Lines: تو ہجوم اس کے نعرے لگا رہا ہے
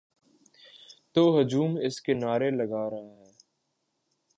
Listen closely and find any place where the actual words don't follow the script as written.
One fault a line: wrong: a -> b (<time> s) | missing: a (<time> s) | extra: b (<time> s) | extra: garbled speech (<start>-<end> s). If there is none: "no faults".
no faults